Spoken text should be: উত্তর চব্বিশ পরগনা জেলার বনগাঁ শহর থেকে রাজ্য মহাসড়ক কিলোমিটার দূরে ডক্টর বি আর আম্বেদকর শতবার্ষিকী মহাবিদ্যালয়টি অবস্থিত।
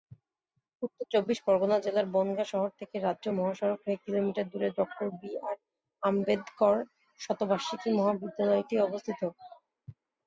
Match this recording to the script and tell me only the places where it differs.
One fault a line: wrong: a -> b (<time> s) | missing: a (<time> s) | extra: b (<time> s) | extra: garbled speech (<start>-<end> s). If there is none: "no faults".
extra: হয়ে (3.8 s)